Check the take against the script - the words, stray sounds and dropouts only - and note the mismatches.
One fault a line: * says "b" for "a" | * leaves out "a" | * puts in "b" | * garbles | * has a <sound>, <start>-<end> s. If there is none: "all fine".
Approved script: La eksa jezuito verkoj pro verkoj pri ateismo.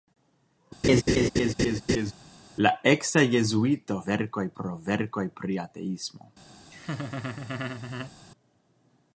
* has a laugh, 0.8-2.1 s
* has a laugh, 6.7-8.1 s